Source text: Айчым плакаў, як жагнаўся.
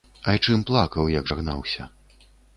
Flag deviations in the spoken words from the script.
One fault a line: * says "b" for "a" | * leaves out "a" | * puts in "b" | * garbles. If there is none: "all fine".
all fine